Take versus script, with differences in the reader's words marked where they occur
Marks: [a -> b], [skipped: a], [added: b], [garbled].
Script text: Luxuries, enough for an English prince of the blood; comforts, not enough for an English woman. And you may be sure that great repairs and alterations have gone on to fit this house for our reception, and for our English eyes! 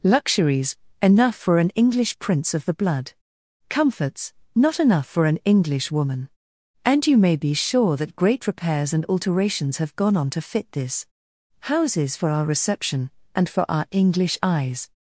Luxuries, enough for an English prince of the blood; comforts, not enough for an English woman. And you may be sure that great repairs and alterations have gone on to fit this [house -> houses] for our reception, and for our English eyes!